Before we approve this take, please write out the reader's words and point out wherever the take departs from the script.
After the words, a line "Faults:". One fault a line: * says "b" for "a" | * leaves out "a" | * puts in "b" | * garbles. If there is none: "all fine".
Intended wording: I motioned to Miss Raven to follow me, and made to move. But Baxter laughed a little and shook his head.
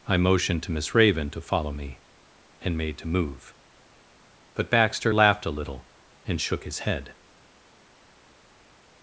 I motioned to Miss Raven to follow me, and made to move. But Baxter laughed a little and shook his head.
Faults:
all fine